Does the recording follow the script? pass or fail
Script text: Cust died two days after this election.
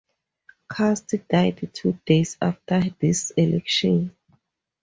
pass